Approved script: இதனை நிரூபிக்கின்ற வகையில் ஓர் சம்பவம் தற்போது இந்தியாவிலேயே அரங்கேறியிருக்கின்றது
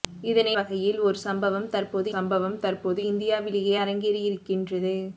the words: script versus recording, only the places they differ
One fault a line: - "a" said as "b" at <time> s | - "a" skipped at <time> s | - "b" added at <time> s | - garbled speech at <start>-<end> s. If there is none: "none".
- "நிரூபிக்கின்ற" skipped at 0.5 s
- "சம்பவம் தற்போது" added at 2.1 s